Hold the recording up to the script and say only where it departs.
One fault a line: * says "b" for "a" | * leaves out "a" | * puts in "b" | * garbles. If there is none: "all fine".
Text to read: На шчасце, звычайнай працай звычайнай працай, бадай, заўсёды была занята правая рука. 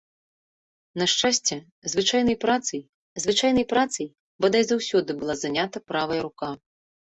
all fine